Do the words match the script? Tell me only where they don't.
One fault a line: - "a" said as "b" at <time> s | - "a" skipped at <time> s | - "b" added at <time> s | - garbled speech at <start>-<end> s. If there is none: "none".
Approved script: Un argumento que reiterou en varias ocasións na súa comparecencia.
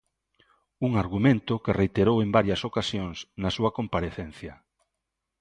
none